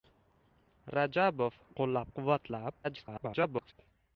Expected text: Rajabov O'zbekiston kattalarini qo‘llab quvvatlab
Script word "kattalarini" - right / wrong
wrong